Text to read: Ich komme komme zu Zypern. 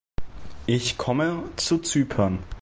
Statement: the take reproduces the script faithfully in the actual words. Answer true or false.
false